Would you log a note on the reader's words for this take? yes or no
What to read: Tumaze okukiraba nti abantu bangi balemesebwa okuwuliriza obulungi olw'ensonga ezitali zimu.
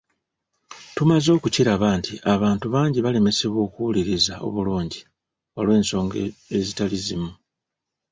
no